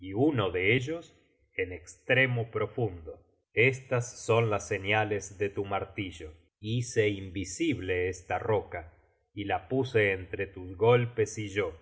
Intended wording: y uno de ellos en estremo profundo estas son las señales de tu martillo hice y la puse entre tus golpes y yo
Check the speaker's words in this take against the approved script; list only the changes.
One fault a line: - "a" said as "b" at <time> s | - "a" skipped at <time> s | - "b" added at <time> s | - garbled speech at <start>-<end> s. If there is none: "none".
- "invisible esta roca" added at 7.1 s